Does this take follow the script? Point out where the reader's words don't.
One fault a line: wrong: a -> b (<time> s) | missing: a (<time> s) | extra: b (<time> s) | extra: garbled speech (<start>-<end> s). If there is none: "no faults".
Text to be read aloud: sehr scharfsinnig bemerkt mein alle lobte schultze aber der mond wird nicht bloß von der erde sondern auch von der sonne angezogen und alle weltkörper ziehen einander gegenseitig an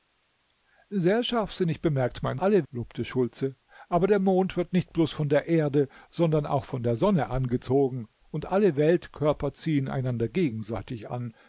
no faults